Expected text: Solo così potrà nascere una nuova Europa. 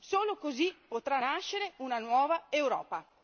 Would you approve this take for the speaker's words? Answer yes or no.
yes